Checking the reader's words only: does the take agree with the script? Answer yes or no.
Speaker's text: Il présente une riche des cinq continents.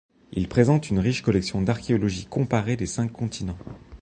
no